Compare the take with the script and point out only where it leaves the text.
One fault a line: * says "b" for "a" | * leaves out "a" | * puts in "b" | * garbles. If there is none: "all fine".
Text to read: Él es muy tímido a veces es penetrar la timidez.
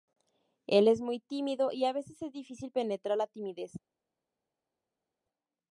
* puts in "y"
* puts in "difícil"